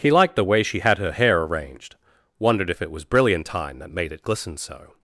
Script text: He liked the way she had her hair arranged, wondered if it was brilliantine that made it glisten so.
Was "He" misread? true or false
false